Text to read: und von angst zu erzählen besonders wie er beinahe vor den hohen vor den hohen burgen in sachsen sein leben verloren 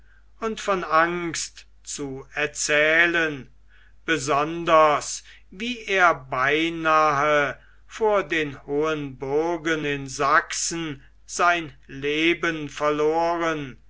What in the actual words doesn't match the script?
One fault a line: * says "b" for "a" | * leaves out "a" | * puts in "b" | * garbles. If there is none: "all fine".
* leaves out "vor den hohen"